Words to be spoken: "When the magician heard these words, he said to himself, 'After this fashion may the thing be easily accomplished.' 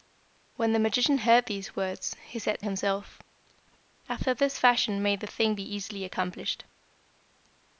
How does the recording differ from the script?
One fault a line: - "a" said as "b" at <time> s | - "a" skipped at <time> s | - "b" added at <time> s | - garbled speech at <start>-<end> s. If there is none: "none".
- "to" skipped at 2.6 s